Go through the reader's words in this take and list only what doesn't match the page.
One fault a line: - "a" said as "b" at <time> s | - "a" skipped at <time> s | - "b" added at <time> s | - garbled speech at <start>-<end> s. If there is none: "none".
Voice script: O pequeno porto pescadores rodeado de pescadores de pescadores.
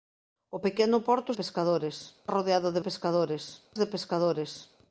none